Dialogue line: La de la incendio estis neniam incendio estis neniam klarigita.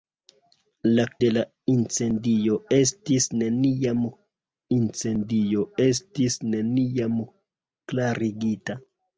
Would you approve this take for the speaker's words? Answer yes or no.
yes